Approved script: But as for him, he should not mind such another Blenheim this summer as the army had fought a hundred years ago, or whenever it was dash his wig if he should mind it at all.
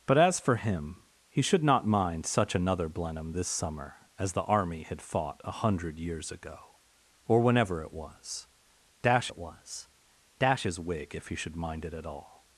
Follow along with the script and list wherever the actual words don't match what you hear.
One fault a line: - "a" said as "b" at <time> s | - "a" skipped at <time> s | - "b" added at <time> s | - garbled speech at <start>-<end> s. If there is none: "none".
- "it was dash" added at 9.3 s